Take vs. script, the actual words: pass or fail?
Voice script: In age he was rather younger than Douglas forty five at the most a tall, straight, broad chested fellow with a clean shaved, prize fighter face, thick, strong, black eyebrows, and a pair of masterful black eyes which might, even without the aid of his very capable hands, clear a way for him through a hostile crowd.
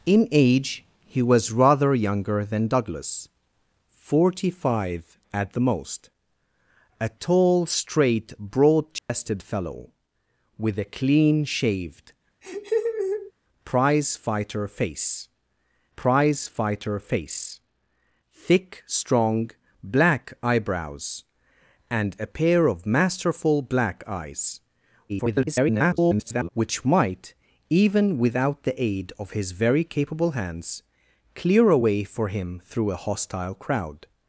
fail